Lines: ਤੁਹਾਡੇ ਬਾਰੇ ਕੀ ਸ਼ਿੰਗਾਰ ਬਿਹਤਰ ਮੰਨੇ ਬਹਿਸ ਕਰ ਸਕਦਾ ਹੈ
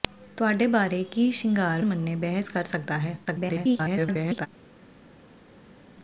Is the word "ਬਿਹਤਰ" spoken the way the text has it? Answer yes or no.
no